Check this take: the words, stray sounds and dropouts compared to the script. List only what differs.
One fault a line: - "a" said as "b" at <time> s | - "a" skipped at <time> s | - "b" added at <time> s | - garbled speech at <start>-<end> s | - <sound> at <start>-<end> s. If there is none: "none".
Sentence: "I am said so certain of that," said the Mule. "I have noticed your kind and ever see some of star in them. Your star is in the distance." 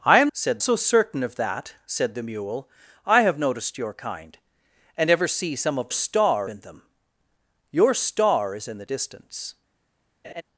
- laugh at 10.2-10.4 s